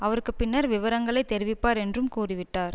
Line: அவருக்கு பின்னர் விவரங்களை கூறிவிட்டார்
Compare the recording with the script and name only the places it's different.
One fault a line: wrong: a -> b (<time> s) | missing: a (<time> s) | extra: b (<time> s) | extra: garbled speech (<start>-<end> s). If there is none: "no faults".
extra: தெரிவிப்பார் என்றும் (1.3 s)